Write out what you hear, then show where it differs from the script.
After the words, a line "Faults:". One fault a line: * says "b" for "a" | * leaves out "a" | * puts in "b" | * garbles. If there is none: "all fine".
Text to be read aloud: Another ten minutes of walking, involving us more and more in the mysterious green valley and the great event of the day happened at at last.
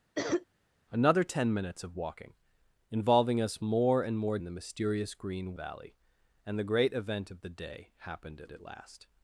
Another ten minutes of walking, involving us more and more in the mysterious green valley and the great event of the day happened at at last.
Faults:
all fine